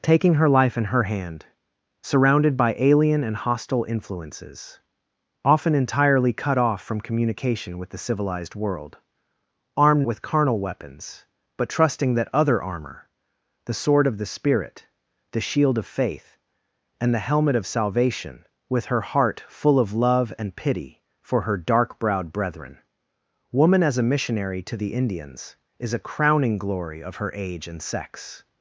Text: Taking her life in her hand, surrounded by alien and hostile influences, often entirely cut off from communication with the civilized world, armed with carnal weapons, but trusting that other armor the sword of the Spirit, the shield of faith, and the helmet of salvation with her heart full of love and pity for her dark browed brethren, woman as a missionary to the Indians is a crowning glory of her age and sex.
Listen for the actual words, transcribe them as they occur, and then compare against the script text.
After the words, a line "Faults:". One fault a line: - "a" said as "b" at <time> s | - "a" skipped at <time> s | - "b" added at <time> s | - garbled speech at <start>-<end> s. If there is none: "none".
Taking her life in her hand, surrounded by alien and hostile influences, often entirely cut off from communication with the civilized world, armed with carnal weapons, but trusting that other armor the sword of the Spirit, the shield of faith, and the helmet of salvation with her heart full of love and pity for her dark browed brethren, woman as a missionary to the Indians is a crowning glory of her age and sex.
Faults:
none